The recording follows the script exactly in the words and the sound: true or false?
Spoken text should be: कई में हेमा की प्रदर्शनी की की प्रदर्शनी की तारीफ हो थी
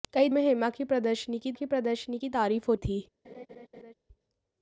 false